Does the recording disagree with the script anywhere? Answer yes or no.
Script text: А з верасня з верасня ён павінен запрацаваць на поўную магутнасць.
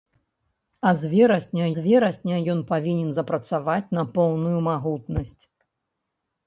no